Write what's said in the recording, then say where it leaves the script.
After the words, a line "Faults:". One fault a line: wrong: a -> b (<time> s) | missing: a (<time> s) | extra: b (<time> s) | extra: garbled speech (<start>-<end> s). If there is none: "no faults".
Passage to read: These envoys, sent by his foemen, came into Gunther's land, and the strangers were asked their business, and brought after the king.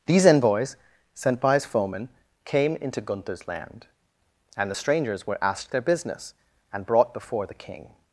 These envoys, sent by his foemen, came into Gunther's land, and the strangers were asked their business, and brought before the king.
Faults:
wrong: after -> before (7.1 s)